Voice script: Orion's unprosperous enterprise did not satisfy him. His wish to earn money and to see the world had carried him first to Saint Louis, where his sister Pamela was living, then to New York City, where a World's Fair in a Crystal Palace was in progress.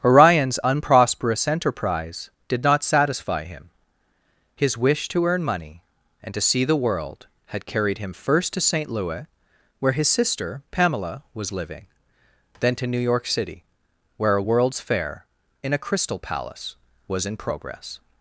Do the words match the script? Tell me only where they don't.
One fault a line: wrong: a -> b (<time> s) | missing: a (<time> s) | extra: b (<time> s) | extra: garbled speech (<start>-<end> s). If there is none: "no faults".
no faults